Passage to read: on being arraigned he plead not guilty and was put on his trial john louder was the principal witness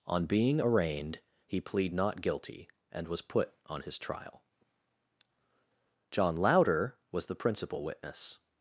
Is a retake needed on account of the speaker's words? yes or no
no